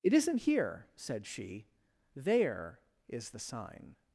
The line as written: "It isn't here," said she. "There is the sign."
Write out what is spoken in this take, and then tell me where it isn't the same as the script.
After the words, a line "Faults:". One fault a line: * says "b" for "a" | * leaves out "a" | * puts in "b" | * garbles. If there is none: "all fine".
"It isn't here," said she. "There is the sign."
Faults:
all fine